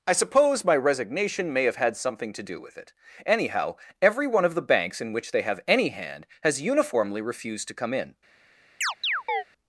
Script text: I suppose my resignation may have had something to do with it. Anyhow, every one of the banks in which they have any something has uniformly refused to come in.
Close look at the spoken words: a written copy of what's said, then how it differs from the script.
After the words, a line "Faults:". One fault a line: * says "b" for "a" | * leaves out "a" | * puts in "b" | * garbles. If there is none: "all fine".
I suppose my resignation may have had something to do with it. Anyhow, every one of the banks in which they have any hand has uniformly refused to come in.
Faults:
* says "hand" for "something"